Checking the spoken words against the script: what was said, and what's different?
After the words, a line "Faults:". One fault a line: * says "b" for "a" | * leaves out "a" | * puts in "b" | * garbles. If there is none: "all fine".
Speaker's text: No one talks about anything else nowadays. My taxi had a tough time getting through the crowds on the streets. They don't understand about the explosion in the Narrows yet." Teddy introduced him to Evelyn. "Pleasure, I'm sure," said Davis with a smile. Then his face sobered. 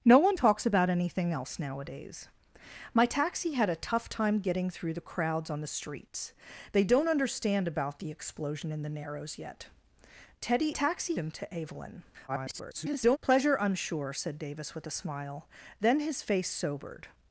No one talks about anything else nowadays. My taxi had a tough time getting through the crowds on the streets. They don't understand about the explosion in the Narrows yet." Teddy taxi him to Evelyn. [garbled] "Pleasure, I'm sure," said Davis with a smile. Then his face sobered.
Faults:
* says "taxi" for "introduced"
* garbles